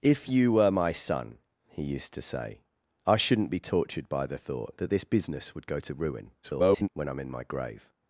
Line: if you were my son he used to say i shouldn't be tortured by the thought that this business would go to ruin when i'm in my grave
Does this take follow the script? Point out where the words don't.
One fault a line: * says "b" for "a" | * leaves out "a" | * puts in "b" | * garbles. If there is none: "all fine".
* garbles